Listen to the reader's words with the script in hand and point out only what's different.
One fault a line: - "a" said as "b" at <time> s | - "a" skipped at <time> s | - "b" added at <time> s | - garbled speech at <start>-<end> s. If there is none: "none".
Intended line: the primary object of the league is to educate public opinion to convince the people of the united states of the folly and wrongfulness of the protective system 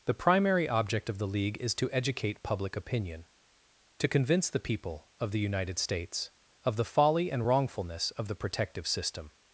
none